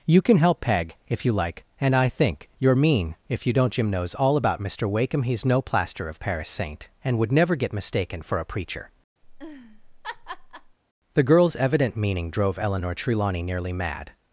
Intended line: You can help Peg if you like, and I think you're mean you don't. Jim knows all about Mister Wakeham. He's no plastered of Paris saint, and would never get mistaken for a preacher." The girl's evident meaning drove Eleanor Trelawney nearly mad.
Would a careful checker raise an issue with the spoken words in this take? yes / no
yes